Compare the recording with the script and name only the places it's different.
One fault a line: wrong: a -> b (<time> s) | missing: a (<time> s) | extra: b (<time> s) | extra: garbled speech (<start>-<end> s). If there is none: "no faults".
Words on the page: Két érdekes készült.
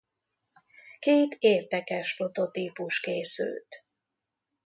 extra: prototípus (2.1 s)